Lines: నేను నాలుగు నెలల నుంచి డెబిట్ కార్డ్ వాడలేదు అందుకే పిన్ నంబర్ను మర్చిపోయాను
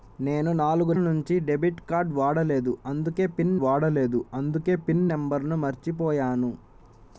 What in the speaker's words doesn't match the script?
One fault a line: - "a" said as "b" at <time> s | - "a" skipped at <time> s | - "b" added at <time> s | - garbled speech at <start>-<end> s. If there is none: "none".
- "నెలల" skipped at 0.9 s
- "వాడలేదు అందుకే పిన్" added at 3.6 s